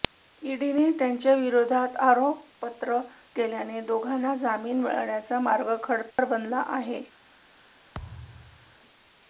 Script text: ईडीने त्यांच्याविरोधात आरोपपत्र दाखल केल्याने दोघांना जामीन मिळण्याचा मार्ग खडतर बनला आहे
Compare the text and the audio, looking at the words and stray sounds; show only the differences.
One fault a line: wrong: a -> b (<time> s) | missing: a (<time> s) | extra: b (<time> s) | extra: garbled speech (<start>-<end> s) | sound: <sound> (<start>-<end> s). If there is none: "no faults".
missing: दाखल (3.0 s)
sound: dropout (6.1-6.2 s)
sound: thud (7.9-8.8 s)